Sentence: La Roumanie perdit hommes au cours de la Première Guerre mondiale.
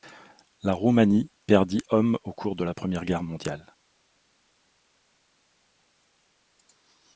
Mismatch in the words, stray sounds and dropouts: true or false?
false